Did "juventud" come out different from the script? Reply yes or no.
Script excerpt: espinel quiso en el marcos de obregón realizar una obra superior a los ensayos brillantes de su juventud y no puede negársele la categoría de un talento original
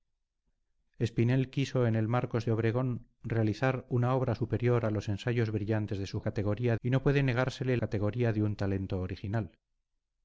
yes